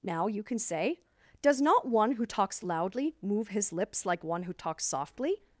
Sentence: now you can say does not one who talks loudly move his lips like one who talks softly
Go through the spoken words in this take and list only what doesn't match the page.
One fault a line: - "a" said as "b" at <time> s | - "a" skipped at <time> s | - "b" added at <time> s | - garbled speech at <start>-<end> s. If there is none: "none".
none